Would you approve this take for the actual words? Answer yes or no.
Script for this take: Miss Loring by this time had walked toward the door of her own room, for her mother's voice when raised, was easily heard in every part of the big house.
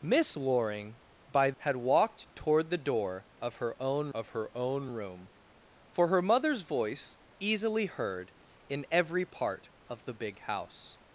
no